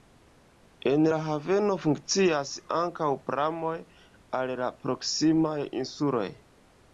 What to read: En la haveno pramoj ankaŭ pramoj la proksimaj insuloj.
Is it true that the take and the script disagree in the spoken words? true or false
true